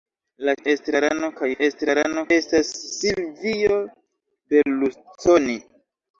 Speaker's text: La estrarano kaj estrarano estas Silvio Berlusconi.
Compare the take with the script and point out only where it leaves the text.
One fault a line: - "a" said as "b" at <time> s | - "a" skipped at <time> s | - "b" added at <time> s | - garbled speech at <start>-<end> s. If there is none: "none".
none